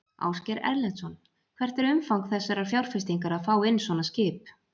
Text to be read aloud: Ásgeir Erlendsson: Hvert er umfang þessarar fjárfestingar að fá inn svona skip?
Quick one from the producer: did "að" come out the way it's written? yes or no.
yes